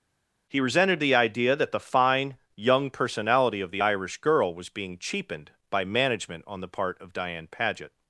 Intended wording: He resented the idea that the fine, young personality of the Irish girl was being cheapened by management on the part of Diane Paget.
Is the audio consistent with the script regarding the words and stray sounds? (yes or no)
yes